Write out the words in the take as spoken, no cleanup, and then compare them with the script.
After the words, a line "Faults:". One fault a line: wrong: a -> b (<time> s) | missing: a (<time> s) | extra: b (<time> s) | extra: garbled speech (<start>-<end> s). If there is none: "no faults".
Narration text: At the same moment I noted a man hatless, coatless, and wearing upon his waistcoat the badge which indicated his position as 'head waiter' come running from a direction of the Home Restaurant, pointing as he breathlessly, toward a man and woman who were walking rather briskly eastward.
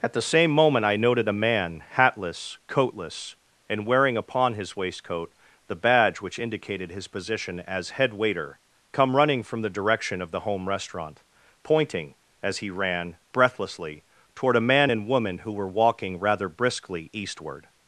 At the same moment I noted a man hatless, coatless, and wearing upon his waistcoat the badge which indicated his position as 'head waiter' come running from the direction of the Home Restaurant, pointing as he ran, breathlessly, toward a man and woman who were walking rather briskly eastward.
Faults:
wrong: a -> the (9.6 s)
extra: ran (12.7 s)